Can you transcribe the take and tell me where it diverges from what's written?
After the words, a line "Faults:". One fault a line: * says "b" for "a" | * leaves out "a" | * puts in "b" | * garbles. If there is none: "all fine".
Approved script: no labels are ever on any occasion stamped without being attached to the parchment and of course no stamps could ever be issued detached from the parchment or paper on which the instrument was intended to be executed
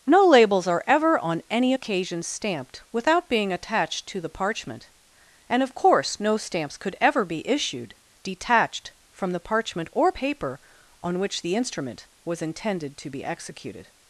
no labels are ever on any occasion stamped without being attached to the parchment and of course no stamps could ever be issued detached from the parchment or paper on which the instrument was intended to be executed
Faults:
all fine